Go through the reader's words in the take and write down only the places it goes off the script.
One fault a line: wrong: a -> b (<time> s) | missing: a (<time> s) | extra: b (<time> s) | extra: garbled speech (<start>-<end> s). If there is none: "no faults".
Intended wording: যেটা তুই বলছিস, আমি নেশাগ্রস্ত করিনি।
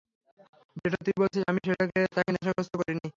extra: তাকে (2.1 s)